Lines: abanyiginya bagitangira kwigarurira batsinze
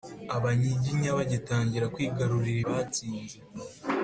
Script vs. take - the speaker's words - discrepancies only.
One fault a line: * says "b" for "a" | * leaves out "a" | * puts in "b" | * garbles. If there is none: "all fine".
all fine